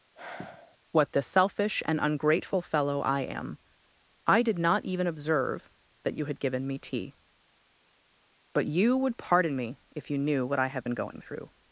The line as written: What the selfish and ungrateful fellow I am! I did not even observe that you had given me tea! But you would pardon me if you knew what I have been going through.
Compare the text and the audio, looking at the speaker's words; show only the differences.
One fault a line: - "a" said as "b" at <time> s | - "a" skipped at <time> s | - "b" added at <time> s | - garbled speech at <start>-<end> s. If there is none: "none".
none